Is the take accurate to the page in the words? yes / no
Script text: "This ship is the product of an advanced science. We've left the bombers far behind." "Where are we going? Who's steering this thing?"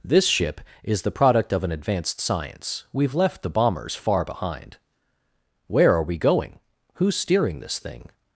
yes